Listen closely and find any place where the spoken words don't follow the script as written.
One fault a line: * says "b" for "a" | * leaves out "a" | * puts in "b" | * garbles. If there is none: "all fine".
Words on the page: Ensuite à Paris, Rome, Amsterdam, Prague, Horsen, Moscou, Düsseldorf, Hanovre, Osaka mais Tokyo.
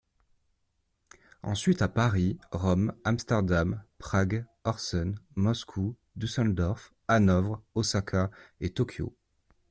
* says "et" for "mais"